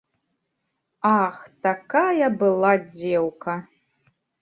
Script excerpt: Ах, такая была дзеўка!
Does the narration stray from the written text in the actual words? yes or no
no